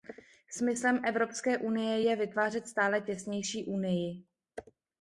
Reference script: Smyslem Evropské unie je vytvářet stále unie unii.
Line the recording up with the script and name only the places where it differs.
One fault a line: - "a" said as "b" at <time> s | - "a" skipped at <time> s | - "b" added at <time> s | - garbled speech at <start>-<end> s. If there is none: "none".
- "unie" said as "těsnější" at 3.0 s